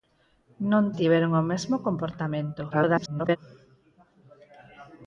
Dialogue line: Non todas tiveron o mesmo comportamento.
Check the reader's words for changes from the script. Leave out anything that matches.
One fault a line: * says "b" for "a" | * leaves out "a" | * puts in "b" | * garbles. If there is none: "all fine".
* leaves out "todas"
* garbles